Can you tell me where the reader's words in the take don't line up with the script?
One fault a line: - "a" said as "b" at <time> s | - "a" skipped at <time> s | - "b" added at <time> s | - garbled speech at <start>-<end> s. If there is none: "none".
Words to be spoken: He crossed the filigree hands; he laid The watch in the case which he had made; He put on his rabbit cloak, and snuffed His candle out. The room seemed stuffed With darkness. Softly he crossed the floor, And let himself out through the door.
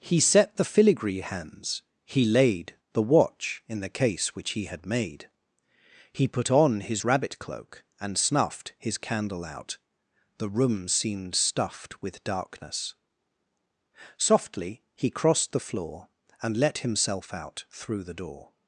- "crossed" said as "set" at 0.2 s